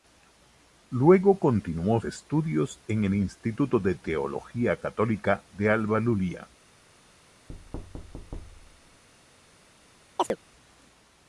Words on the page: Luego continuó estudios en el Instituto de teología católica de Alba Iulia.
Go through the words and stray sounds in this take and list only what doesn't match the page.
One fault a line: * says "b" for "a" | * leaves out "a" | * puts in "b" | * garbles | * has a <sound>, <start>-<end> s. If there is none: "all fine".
* has a thud, 7.5-9.0 s
* has a chirp, 10.2-10.4 s